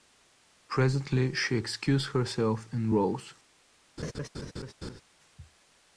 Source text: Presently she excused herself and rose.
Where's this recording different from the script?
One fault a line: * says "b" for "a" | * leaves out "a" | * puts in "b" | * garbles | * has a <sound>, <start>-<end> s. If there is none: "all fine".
* has a laugh, 4.0-5.0 s